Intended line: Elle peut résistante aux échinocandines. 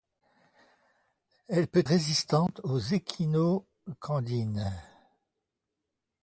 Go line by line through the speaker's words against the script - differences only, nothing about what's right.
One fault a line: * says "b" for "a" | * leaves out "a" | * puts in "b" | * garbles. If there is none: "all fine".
all fine